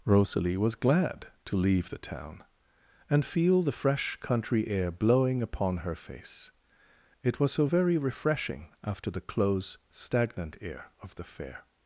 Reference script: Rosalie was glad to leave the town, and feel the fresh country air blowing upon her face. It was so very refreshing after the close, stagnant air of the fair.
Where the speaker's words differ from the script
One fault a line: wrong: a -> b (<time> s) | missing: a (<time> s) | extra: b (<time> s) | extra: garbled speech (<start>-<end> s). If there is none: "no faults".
no faults